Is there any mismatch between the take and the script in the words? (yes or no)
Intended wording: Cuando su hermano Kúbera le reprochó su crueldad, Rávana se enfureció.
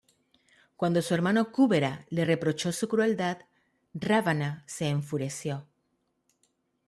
no